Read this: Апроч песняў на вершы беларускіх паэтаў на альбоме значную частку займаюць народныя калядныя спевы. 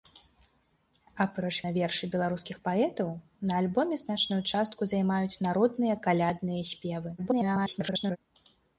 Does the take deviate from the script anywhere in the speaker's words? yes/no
yes